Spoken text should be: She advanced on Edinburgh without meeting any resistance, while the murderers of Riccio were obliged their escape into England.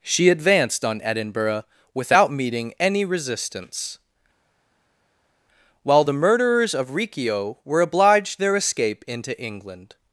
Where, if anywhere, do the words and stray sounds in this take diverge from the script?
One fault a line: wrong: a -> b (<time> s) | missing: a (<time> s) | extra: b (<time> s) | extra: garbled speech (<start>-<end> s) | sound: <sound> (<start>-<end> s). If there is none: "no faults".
no faults